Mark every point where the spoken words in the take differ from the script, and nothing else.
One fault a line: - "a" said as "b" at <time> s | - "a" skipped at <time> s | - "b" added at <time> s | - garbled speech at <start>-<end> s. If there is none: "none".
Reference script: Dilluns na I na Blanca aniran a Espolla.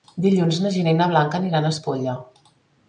- "Gina" added at 0.8 s